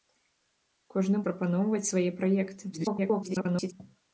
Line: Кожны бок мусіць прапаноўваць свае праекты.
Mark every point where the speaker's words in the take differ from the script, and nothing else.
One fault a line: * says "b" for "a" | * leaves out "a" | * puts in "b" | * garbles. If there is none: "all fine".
* leaves out "бок мусіць"
* garbles